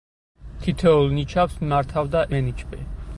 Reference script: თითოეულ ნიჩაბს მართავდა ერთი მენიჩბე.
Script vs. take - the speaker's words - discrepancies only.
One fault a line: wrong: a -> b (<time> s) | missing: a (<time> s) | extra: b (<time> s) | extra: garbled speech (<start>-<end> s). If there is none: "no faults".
missing: ერთი (2.2 s)